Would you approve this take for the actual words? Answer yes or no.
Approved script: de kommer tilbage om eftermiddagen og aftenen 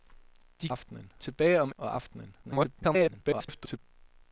no